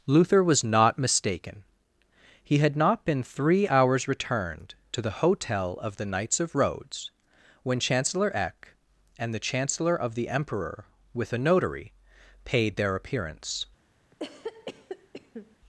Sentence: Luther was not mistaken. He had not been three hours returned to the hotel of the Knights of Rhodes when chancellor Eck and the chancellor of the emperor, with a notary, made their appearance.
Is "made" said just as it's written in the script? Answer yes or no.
no